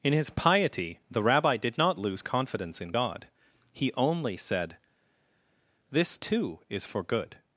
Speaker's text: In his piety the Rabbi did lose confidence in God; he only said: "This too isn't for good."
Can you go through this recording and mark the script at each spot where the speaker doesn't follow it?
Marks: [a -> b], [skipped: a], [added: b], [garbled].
In his piety the Rabbi did [added: not] lose confidence in God; he only said: "This too [isn't -> is] for good."